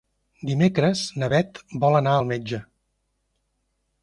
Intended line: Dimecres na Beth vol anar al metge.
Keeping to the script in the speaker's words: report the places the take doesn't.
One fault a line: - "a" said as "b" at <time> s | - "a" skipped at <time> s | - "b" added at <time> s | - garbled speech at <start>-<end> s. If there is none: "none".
none